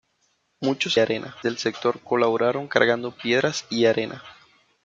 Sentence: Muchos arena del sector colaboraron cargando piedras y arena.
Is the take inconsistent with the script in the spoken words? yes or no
no